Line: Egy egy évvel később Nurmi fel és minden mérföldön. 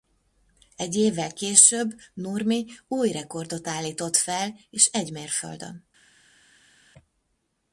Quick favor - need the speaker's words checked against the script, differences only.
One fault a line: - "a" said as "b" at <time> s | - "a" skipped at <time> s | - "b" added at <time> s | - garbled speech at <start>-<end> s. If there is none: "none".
- "egy" skipped at 0.9 s
- "új rekordot állított" added at 2.9 s
- "minden" said as "egy" at 4.8 s